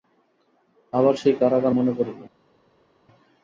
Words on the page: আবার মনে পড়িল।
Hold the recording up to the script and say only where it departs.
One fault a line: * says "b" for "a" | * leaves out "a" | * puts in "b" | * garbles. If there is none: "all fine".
* puts in "সেই কারাগার"